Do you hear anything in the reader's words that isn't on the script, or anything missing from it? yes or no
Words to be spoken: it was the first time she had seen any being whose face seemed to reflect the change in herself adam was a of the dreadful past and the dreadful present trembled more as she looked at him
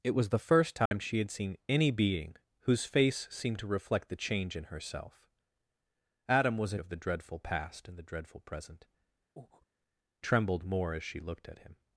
no